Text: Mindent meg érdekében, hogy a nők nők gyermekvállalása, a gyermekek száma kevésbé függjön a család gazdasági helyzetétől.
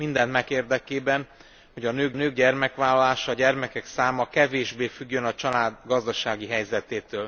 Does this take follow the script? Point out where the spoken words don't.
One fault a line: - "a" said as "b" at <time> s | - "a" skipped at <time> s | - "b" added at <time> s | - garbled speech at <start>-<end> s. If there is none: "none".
none